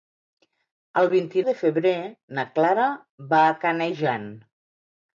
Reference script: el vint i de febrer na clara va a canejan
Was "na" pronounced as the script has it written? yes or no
yes